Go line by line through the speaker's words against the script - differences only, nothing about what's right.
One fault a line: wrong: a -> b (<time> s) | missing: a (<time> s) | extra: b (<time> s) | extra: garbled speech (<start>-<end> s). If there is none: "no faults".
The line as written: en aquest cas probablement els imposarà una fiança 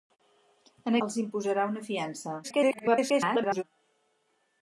missing: aquest cas probablement (0.9 s)
extra: garbled speech (2.4-3.6 s)